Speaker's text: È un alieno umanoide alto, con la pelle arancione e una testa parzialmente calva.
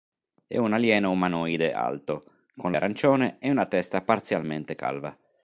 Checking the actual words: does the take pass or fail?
fail